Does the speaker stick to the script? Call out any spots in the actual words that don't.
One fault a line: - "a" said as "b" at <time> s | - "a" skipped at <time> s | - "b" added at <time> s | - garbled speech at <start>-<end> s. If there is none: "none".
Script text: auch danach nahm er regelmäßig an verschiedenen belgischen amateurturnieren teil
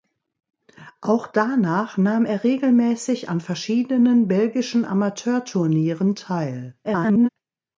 - garbled speech at 6.8-7.3 s